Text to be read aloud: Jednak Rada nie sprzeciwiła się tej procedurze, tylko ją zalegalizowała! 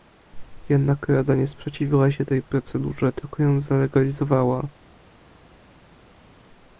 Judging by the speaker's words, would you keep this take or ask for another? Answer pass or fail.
pass